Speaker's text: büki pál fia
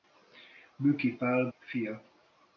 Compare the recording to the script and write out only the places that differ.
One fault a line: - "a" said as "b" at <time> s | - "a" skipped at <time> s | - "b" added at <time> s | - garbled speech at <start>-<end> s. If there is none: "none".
none